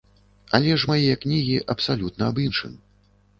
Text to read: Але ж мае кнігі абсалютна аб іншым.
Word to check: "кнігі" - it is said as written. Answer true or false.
true